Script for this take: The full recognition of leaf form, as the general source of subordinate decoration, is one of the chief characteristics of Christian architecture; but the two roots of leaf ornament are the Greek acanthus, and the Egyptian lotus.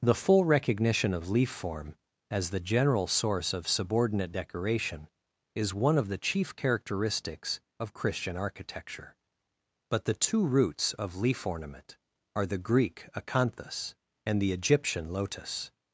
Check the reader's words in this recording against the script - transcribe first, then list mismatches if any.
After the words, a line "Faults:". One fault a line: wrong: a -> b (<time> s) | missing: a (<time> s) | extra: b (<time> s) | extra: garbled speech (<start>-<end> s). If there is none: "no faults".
The full recognition of leaf form, as the general source of subordinate decoration, is one of the chief characteristics of Christian architecture; but the two roots of leaf ornament are the Greek acanthus, and the Egyptian lotus.
Faults:
no faults